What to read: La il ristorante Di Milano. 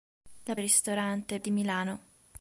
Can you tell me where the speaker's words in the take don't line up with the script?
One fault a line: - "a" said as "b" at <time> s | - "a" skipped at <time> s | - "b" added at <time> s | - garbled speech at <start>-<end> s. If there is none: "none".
none